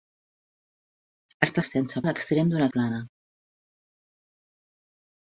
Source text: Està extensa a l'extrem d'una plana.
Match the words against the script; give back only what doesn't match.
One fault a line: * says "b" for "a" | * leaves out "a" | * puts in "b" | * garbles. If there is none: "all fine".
all fine